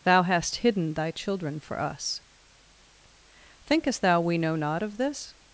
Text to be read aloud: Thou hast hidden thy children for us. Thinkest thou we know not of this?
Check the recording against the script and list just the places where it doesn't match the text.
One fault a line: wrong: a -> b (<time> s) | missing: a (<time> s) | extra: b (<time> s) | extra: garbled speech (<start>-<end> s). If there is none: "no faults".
no faults